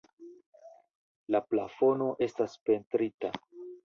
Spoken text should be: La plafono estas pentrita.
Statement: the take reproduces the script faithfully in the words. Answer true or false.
true